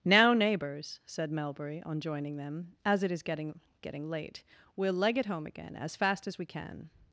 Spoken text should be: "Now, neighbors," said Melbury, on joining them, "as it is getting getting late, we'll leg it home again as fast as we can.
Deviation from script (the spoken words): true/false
false